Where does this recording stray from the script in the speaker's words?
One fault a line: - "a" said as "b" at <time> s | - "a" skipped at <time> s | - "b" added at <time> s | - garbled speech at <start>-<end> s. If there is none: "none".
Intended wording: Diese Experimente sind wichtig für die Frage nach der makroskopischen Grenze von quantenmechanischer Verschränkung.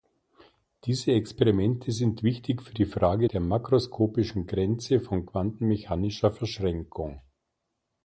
- "nach" skipped at 3.3 s